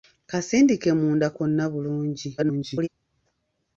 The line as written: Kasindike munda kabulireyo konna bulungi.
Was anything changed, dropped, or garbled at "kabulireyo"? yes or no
yes